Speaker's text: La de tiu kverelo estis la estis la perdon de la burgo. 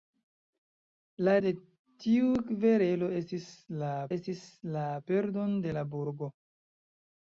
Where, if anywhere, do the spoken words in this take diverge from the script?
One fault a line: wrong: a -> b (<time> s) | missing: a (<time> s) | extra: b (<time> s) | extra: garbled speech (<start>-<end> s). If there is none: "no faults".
no faults